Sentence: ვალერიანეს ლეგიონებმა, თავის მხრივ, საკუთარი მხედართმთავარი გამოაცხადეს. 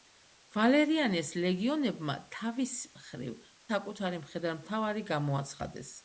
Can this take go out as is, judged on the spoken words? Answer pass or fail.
pass